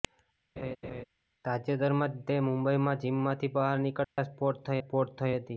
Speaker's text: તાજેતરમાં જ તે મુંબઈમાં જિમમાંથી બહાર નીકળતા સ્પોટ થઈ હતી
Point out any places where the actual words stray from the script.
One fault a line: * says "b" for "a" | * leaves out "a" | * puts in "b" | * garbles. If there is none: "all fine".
* puts in "સ્પોટ થઈ"